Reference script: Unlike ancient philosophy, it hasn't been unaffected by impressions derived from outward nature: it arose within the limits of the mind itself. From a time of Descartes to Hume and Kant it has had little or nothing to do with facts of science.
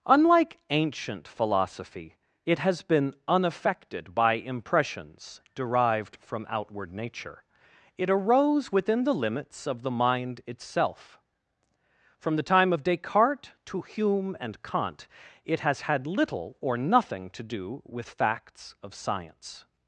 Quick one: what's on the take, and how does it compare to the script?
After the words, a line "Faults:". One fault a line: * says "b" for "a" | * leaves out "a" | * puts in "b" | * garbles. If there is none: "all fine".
Unlike ancient philosophy, it has been unaffected by impressions derived from outward nature: it arose within the limits of the mind itself. From the time of Descartes to Hume and Kant it has had little or nothing to do with facts of science.
Faults:
* says "has" for "hasn't"
* says "the" for "a"